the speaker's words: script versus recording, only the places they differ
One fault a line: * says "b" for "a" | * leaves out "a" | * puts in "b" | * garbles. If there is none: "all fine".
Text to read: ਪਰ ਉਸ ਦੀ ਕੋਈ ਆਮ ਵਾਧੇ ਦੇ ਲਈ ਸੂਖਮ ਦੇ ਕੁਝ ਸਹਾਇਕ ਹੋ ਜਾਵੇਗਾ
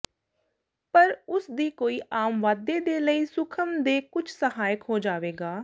all fine